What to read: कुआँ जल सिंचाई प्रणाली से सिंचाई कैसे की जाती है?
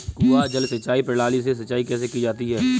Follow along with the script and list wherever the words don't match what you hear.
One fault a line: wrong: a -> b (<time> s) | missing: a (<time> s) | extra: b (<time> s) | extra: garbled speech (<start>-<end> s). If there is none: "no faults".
no faults